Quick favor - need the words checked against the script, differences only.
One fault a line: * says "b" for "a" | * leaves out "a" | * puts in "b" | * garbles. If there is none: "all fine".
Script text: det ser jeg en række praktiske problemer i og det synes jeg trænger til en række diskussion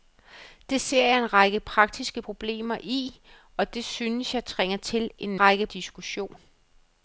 all fine